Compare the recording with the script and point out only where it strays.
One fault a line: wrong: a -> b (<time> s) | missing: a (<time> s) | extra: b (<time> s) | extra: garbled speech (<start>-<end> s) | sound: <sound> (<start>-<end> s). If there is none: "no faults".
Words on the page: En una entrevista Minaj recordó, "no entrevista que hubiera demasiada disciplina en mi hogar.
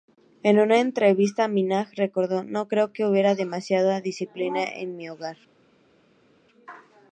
wrong: entrevista -> creo (2.7 s)